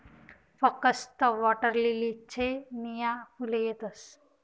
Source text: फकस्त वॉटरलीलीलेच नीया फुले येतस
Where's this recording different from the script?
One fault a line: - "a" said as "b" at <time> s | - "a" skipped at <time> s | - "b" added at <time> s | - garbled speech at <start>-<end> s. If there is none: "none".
none